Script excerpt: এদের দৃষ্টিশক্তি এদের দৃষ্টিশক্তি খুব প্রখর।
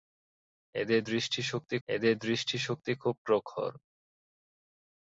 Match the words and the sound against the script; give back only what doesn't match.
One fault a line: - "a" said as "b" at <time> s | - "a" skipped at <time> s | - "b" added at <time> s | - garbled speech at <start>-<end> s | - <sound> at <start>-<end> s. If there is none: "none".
none